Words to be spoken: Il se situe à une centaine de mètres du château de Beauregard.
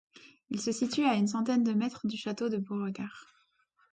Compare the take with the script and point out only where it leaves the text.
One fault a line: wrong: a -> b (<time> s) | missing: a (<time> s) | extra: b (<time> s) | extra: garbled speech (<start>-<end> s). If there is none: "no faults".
no faults